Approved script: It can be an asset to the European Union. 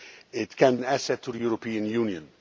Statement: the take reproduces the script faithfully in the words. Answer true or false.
false